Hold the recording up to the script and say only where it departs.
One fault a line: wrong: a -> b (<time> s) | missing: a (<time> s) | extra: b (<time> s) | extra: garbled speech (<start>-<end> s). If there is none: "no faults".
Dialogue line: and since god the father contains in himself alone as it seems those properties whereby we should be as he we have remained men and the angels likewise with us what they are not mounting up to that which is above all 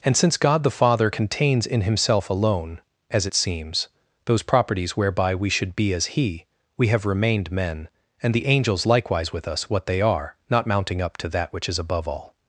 no faults